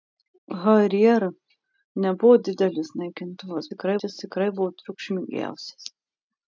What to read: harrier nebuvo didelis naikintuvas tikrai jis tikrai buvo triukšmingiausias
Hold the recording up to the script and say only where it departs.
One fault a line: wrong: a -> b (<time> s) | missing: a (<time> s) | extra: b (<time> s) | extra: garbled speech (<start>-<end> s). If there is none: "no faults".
no faults